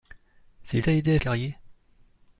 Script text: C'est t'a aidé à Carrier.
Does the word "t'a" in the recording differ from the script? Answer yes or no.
no